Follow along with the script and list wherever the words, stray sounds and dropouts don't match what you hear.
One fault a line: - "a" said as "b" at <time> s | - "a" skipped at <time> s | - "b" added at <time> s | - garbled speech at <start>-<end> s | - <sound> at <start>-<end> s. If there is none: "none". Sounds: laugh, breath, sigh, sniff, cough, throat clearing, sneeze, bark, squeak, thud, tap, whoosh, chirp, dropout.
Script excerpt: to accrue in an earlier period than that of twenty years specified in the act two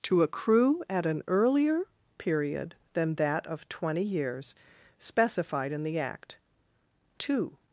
- "in" said as "at" at 0.9 s